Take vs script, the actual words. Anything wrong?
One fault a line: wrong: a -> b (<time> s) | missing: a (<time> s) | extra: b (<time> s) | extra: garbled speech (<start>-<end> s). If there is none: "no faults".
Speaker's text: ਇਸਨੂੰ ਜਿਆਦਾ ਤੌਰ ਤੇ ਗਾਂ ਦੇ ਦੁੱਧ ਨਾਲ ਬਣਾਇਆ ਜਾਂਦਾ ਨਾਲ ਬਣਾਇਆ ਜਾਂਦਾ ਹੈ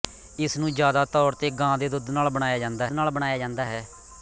no faults